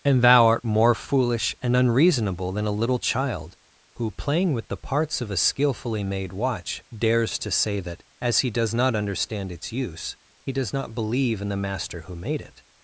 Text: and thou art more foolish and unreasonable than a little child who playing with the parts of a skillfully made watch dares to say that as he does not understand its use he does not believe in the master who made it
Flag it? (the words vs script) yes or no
no